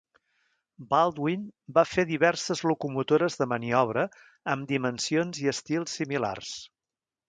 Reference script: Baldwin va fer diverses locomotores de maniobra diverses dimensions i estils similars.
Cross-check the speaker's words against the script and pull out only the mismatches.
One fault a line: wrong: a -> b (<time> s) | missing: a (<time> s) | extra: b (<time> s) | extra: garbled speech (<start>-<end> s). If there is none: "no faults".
wrong: diverses -> amb (4.6 s)